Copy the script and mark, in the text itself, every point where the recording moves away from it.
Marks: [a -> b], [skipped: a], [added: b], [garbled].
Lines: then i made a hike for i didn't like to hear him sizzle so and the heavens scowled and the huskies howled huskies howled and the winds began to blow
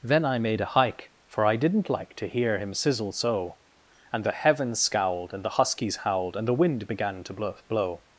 then i made a hike for i didn't like to hear him sizzle so and the heavens scowled and the huskies howled [skipped: huskies howled] and the [winds -> wind] began to blow